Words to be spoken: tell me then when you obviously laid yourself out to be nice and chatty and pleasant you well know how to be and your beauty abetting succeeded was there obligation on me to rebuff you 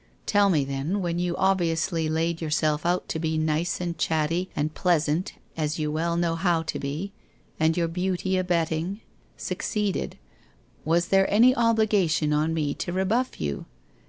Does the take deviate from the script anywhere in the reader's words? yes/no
yes